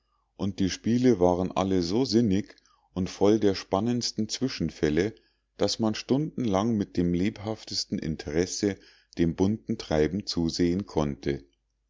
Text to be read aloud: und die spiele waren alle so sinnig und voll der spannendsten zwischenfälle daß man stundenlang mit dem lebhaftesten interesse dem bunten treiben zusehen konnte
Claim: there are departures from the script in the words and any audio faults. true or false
false